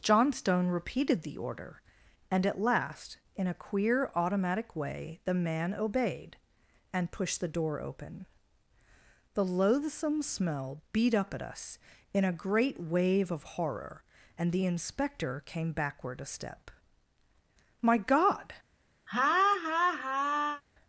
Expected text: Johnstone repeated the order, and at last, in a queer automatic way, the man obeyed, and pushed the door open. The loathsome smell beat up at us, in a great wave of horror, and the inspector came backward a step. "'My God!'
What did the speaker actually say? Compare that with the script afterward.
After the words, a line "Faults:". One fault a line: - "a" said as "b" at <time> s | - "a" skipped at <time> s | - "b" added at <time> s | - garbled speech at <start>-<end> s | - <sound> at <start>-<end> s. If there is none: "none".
Johnstone repeated the order, and at last, in a queer automatic way, the man obeyed, and pushed the door open. The loathsome smell beat up at us, in a great wave of horror, and the inspector came backward a step. "'My God!'
Faults:
- laugh at 19.1-20.6 s